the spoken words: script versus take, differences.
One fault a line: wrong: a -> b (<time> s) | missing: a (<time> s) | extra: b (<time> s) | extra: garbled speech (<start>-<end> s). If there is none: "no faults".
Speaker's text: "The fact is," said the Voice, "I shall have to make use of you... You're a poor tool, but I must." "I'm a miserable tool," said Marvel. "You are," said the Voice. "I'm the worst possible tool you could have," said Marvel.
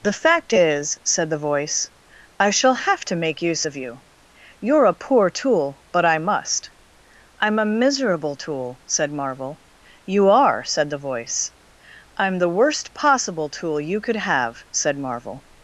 no faults